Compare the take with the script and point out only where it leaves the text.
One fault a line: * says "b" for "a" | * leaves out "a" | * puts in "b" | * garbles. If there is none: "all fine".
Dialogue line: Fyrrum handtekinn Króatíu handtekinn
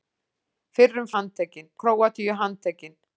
all fine